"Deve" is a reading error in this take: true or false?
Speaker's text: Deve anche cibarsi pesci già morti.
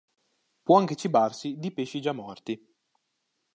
true